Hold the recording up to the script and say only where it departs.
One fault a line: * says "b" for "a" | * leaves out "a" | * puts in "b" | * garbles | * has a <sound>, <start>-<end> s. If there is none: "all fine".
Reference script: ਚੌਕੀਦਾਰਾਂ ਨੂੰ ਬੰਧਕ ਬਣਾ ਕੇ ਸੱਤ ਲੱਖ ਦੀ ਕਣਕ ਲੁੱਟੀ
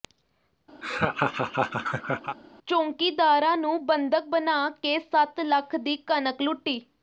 * has a laugh, 0.8-2.4 s